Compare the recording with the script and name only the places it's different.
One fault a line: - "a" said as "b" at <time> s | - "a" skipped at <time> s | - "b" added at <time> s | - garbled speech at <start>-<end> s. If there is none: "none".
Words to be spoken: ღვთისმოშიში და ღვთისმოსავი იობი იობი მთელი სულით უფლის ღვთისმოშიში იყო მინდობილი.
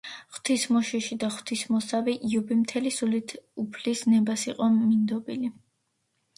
- "იობი" skipped at 2.6 s
- "ღვთისმოშიში" said as "ნებას" at 4.1 s